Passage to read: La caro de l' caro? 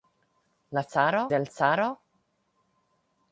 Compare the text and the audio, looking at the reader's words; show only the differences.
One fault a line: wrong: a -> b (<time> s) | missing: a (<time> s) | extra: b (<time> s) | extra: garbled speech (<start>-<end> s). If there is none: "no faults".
no faults